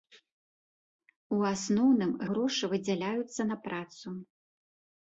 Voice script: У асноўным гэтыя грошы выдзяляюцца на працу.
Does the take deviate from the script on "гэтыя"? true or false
true